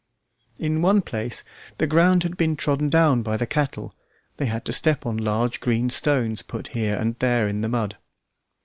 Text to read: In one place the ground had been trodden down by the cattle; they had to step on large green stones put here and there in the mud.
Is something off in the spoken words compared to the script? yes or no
no